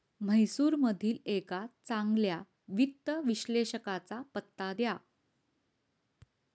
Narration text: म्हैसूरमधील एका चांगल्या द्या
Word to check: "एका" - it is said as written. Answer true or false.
true